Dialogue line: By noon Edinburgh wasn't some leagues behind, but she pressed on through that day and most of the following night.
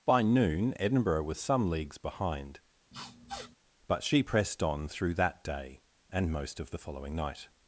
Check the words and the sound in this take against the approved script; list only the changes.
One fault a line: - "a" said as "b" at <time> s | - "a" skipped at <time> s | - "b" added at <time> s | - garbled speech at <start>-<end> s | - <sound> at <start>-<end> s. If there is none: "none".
- "wasn't" said as "was" at 1.2 s
- sniff at 2.9-3.6 s